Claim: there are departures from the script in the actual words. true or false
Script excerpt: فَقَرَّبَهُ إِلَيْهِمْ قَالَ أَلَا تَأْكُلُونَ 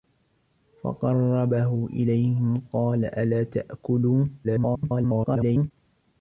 true